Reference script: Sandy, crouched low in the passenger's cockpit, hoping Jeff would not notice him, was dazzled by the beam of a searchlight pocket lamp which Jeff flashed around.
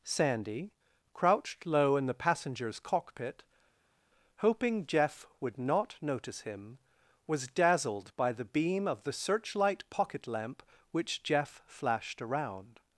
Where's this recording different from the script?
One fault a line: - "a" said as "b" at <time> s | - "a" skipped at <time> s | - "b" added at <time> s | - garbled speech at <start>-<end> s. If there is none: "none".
- "a" said as "the" at 9.0 s